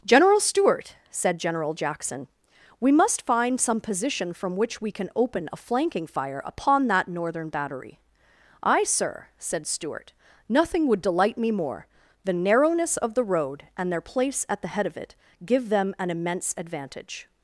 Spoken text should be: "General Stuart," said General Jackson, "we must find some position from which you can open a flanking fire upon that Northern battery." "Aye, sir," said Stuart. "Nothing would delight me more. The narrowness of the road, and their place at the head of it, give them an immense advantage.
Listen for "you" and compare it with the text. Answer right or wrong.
wrong